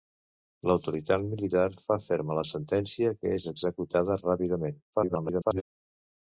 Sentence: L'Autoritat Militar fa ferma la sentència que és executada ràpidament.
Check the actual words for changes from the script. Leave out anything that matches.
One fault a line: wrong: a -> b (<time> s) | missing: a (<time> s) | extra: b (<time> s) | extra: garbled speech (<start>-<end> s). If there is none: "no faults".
extra: garbled speech (4.9-5.6 s)